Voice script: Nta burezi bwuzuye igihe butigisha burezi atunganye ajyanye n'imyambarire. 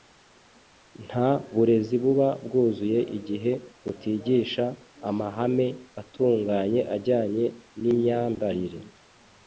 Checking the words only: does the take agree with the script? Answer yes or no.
no